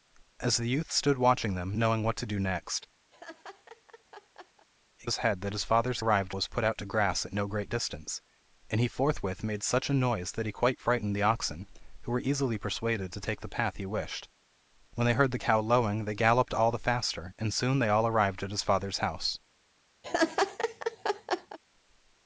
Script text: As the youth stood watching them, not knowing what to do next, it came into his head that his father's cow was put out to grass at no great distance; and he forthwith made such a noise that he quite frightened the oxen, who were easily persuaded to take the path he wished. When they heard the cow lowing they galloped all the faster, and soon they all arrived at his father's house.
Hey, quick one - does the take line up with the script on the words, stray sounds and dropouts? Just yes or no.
no